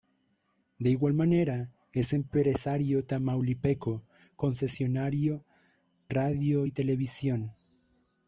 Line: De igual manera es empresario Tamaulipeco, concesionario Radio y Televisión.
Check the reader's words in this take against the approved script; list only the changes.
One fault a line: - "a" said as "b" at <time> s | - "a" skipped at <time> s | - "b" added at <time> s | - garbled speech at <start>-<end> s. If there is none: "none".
none